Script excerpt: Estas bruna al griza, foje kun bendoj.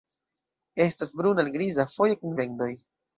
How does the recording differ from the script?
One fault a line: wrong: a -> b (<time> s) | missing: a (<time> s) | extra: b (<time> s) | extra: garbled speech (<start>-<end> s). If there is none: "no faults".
no faults